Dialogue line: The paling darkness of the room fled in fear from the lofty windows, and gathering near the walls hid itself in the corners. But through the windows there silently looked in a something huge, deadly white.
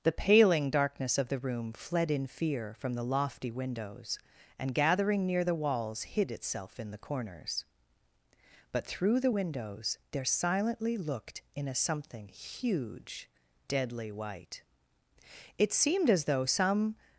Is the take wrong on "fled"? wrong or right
right